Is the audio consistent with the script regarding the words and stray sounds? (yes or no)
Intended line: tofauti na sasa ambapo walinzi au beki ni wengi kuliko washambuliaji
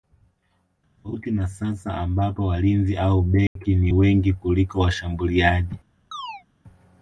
no